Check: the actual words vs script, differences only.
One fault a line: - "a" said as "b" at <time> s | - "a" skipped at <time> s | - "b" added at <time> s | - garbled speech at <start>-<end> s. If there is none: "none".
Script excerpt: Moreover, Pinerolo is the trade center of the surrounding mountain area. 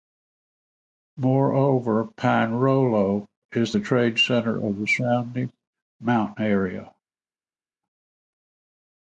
none